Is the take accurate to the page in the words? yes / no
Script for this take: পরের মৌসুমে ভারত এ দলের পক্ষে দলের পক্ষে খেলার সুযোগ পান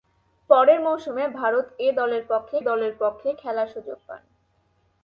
yes